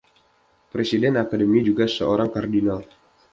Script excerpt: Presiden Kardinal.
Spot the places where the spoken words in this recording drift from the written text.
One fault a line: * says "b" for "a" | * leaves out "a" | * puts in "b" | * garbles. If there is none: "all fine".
* puts in "Akademi juga seorang"